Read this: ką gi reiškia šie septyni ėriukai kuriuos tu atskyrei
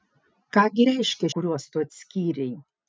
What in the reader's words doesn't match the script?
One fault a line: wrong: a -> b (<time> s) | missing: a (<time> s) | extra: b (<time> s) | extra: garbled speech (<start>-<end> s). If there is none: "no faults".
missing: šie septyni ėriukai (1.3 s)